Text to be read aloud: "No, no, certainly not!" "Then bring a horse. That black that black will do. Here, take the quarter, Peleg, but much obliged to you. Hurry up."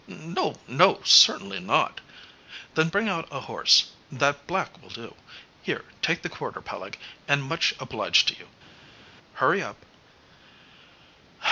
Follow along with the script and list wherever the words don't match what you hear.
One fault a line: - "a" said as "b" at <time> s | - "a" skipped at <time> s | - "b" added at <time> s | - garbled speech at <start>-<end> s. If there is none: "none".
- "out" added at 3.1 s
- "that black" skipped at 4.8 s
- "but" said as "and" at 7.3 s